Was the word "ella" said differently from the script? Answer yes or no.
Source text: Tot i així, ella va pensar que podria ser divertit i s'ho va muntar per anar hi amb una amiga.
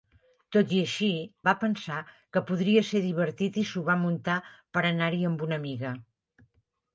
yes